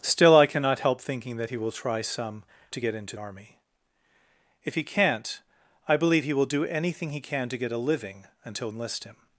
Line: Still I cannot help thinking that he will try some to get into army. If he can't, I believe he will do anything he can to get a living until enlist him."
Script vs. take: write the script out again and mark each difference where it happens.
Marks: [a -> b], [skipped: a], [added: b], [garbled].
Still I cannot help thinking that he will try some to get into army. If he can't, I believe he will do anything he can to get a living until enlist him."